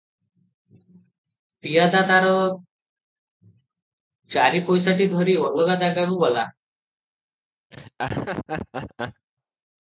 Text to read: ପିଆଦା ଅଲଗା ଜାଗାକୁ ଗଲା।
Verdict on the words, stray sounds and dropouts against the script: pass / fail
fail